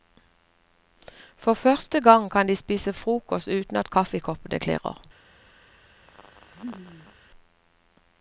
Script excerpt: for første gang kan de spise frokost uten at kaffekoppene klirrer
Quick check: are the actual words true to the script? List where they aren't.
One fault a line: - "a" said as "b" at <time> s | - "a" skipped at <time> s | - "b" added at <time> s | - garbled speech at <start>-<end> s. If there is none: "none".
none